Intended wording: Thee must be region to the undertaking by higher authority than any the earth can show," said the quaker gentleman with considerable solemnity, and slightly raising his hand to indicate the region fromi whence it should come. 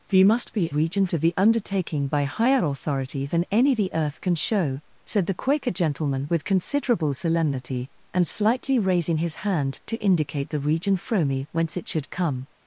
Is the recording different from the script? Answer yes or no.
no